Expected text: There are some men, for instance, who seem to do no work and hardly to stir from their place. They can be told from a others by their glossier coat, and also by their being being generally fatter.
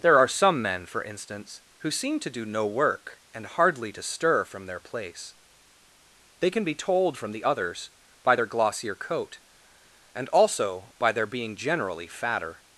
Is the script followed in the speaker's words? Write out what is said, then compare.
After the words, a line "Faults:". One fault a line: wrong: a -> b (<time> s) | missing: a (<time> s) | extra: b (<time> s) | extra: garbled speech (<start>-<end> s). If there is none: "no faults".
There are some men, for instance, who seem to do no work and hardly to stir from their place. They can be told from the others by their glossier coat, and also by their being generally fatter.
Faults:
wrong: a -> the (7.3 s)
missing: being (11.6 s)